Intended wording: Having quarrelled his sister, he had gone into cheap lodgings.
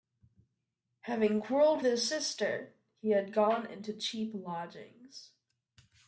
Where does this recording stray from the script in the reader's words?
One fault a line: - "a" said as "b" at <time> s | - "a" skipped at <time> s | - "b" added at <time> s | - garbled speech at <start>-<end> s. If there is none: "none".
none